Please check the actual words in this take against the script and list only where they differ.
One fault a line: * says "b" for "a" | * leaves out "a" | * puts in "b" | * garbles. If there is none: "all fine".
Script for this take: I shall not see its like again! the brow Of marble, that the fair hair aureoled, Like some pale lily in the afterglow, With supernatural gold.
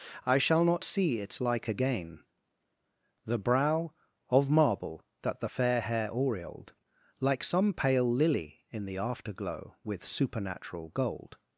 all fine